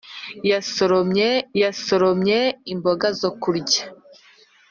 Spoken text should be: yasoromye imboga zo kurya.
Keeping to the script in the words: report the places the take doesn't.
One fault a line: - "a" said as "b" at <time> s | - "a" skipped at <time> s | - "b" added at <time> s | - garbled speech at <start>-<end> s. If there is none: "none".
- "yasoromye" added at 1.6 s